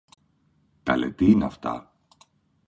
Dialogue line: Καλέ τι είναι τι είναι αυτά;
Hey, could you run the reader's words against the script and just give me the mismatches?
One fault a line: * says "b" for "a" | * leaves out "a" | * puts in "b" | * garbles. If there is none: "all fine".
* leaves out "τι είναι"